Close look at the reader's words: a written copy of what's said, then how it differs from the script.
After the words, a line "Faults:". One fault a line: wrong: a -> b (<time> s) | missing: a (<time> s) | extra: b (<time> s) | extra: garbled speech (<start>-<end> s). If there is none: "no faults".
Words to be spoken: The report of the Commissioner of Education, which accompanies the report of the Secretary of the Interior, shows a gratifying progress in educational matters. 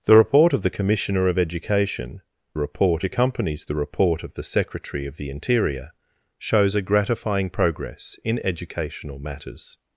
The report of the Commissioner of Education, report accompanies the report of the Secretary of the Interior, shows a gratifying progress in educational matters.
Faults:
wrong: which -> report (2.6 s)